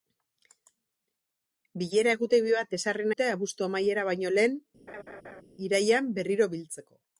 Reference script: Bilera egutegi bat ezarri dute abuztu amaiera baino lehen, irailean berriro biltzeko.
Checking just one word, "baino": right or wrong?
right